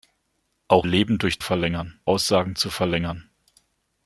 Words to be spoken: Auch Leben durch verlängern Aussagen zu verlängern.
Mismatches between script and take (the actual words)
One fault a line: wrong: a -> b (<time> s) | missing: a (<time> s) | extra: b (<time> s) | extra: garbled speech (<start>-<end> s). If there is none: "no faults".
no faults